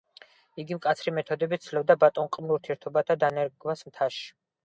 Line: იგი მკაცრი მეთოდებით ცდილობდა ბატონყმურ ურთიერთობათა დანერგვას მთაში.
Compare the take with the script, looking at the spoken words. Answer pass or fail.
pass